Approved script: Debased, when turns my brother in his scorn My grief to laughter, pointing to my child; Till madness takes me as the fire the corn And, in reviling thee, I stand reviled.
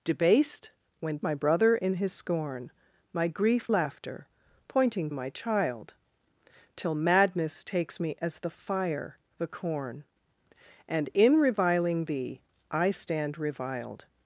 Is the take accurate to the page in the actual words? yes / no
no